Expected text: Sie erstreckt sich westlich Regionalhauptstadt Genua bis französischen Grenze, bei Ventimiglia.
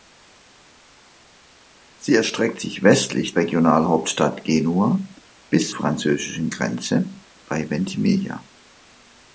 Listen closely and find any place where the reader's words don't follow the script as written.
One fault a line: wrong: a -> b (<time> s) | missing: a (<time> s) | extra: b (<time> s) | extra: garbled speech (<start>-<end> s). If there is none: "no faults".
no faults